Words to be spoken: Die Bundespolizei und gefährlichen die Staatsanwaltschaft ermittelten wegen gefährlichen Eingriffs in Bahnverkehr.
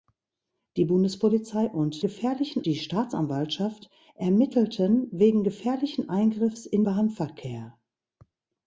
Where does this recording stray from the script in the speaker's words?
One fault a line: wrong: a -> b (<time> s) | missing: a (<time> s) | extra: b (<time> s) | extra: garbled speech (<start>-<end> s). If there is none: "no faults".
no faults